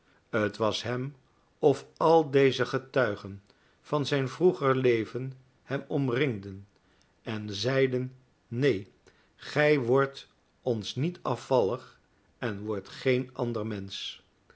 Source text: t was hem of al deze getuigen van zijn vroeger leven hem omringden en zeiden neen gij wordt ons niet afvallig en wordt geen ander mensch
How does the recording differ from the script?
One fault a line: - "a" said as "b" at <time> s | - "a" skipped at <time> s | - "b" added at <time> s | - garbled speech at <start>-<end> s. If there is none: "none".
none